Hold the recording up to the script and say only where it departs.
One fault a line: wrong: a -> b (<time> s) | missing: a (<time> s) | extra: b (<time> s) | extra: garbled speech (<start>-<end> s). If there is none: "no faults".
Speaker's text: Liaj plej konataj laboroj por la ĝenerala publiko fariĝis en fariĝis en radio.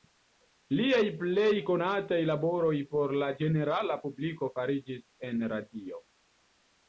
missing: fariĝis en (5.5 s)